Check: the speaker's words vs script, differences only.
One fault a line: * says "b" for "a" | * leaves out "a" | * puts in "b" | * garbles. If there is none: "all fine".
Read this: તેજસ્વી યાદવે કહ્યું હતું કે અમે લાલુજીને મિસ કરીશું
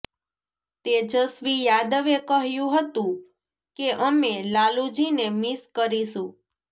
all fine